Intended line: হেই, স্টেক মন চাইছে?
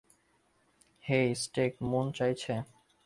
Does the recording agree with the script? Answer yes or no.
yes